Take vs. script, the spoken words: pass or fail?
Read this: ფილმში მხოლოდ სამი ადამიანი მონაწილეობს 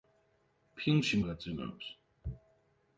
fail